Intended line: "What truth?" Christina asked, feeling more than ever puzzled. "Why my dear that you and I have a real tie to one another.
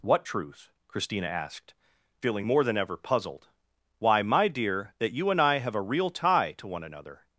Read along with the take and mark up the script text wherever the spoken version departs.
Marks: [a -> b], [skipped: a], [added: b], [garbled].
"What truth?" Christina asked, feeling more than ever puzzled. "Why my dear that you and I have a real tie to one another.